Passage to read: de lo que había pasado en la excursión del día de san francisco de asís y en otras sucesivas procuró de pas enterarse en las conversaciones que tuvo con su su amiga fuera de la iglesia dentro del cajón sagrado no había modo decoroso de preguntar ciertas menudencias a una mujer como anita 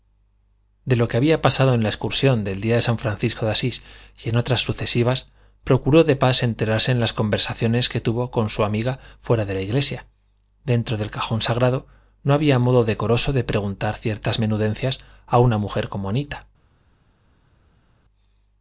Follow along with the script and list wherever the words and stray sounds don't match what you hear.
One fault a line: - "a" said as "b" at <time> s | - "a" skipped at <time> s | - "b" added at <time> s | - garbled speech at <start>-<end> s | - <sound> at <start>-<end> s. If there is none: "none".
- "su" skipped at 8.6 s